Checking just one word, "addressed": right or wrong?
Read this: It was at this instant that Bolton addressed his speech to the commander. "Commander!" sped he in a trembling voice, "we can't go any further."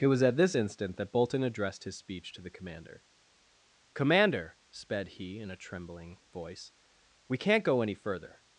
right